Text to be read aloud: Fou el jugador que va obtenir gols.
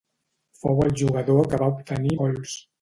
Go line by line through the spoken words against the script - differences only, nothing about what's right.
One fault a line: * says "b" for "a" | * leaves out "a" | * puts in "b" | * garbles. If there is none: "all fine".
all fine